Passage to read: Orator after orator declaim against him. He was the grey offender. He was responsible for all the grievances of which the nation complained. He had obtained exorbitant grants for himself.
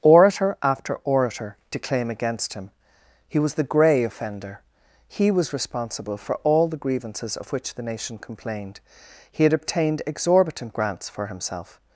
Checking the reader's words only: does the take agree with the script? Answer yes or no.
yes